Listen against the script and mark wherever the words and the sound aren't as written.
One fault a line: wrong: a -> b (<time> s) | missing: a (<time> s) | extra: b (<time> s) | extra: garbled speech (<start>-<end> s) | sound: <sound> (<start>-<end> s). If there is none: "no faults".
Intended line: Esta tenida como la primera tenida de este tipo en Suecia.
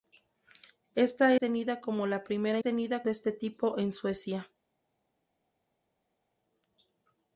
no faults